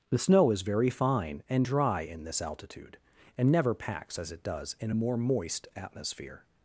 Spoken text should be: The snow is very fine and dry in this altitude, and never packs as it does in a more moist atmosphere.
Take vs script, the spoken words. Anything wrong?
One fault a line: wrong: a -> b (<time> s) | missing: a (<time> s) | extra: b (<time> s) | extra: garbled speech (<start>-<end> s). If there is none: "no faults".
no faults